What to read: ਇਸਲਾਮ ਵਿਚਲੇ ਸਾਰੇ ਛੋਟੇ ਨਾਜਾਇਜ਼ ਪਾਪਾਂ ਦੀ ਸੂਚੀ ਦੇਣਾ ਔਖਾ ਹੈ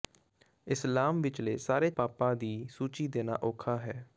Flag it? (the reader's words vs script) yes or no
yes